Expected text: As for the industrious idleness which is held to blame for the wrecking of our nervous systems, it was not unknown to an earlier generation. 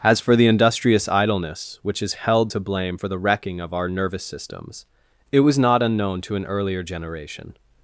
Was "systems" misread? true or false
false